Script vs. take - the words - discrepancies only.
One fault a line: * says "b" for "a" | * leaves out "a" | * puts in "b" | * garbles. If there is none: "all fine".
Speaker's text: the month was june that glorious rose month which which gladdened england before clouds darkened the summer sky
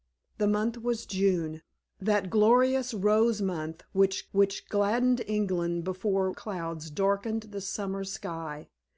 all fine